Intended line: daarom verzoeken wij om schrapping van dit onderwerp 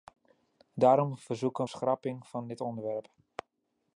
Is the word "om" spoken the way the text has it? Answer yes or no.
no